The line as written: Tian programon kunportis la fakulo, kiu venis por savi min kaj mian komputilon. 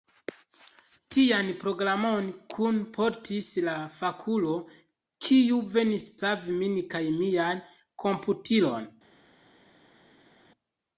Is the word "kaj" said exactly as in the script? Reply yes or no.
yes